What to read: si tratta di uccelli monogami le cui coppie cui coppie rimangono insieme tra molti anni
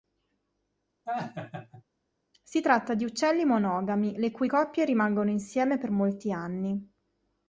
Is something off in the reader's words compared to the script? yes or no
yes